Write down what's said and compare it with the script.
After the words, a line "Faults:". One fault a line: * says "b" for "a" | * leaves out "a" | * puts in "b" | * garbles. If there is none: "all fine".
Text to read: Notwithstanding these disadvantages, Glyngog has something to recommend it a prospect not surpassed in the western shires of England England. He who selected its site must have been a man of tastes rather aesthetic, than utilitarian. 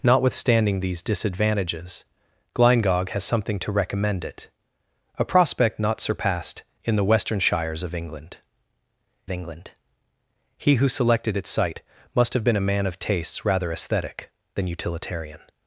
Notwithstanding these disadvantages, Glyngog has something to recommend it a prospect not surpassed in the western shires of England England. He who selected its site must have been a man of tastes rather aesthetic, than utilitarian.
Faults:
all fine